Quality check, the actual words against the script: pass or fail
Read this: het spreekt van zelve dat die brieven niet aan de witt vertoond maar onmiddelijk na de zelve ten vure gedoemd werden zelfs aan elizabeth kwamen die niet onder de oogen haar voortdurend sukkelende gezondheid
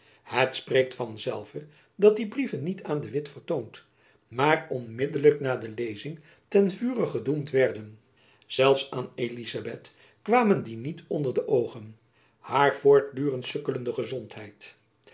fail